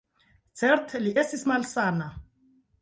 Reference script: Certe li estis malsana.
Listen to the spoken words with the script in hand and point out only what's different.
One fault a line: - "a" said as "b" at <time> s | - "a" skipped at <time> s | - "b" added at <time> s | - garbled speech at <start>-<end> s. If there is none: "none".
none